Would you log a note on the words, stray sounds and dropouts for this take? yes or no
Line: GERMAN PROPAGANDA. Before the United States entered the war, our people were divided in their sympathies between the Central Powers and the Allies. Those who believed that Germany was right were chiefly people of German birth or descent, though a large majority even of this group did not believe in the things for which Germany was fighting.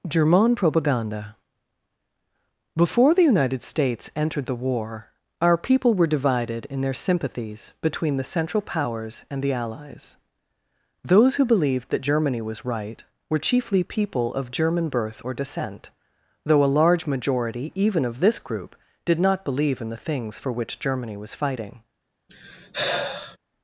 yes